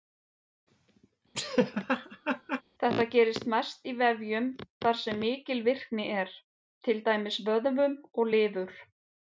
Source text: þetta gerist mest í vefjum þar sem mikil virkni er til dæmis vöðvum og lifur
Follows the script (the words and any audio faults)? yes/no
no